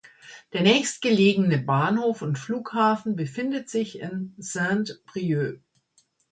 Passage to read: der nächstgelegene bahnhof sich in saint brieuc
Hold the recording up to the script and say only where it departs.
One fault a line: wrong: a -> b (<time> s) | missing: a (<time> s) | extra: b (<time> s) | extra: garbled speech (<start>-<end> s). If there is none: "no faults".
extra: und flughafen befindet (2.2 s)